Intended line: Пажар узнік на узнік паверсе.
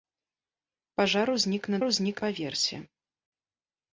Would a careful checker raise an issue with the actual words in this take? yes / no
no